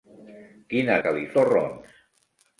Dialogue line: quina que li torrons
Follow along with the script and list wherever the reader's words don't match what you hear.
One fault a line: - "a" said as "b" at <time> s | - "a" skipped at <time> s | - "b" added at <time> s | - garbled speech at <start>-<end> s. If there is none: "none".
none